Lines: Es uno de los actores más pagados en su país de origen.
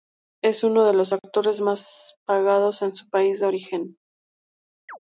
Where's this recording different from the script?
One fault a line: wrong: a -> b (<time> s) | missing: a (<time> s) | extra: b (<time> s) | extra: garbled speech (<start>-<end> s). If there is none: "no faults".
no faults